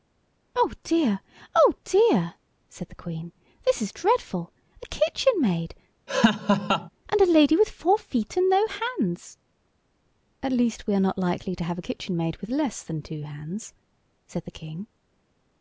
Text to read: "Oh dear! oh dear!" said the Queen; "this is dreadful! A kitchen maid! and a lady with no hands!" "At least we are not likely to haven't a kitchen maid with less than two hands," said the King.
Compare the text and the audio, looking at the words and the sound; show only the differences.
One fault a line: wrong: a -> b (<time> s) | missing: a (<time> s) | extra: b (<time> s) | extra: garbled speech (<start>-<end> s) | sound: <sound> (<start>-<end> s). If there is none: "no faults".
sound: laugh (6.1-6.9 s)
extra: four feet and (7.7 s)
wrong: haven't -> have (11.6 s)